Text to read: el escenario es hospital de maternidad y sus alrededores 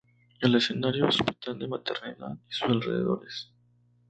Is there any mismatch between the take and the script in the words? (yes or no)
no